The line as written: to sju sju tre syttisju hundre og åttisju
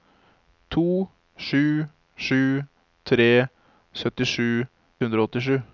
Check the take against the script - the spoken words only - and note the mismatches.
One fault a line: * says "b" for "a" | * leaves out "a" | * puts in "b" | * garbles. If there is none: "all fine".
all fine